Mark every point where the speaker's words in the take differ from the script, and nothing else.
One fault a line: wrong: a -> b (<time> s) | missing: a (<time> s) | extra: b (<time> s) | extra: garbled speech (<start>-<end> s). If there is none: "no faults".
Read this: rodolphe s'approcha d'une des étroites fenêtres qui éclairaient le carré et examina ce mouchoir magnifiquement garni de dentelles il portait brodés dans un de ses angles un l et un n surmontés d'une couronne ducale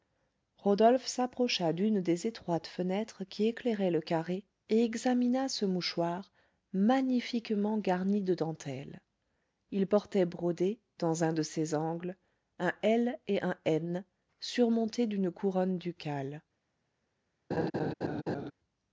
no faults